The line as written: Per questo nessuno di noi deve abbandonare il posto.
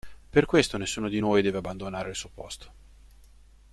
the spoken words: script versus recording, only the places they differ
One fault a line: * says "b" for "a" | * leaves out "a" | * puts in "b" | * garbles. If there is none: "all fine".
* puts in "suo"